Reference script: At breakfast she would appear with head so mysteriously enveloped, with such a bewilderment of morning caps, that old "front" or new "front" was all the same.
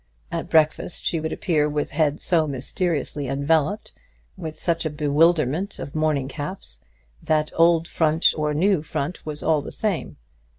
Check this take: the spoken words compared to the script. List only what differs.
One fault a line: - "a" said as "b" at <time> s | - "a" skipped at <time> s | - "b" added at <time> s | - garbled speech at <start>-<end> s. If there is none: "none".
none